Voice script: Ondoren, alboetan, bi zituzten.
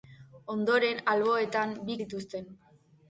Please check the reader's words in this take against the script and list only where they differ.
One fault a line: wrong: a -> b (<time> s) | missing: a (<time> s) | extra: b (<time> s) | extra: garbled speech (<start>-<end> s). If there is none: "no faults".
no faults